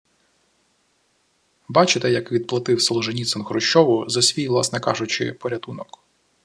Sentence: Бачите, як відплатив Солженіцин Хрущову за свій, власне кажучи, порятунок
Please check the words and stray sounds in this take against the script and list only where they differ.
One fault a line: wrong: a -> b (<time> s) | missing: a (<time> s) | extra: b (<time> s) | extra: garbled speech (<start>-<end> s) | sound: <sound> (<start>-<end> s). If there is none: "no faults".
no faults